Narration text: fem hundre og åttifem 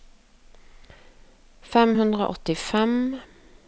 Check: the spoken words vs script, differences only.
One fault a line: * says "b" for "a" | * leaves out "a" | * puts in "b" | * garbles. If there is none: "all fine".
all fine